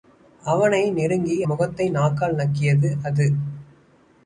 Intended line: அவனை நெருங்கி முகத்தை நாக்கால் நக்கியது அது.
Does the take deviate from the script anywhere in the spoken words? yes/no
no